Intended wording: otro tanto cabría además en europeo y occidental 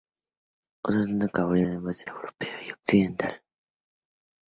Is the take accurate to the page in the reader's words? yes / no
yes